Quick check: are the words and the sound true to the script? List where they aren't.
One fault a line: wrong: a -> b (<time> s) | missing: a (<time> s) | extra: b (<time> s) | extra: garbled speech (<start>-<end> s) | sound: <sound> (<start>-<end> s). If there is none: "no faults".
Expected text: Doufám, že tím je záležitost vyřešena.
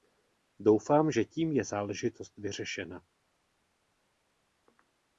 no faults